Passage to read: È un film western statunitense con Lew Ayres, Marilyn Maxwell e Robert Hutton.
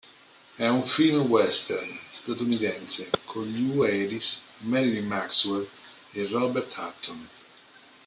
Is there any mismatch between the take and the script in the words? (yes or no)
no